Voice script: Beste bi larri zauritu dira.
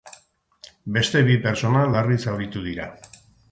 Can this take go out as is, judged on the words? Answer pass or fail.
fail